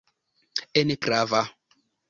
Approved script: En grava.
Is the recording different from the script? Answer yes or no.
no